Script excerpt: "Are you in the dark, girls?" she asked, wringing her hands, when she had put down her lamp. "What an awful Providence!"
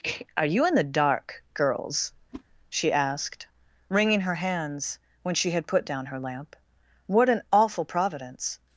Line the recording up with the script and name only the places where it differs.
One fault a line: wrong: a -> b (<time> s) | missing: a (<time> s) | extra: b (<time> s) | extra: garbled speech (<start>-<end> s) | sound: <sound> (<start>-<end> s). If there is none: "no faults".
sound: whoosh (2.3-2.4 s)